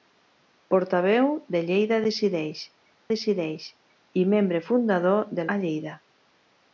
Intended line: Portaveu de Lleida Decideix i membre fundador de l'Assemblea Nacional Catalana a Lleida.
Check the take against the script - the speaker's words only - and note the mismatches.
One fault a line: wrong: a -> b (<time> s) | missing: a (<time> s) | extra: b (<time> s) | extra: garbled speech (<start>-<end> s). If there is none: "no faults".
extra: Decideix (3.1 s)
missing: l'Assemblea Nacional Catalana (5.5 s)